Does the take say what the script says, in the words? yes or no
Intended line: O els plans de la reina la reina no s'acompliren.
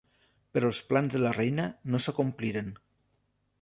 no